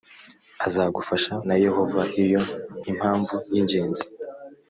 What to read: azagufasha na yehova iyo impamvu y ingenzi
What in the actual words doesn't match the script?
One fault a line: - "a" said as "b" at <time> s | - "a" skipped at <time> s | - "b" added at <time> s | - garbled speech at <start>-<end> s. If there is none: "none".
none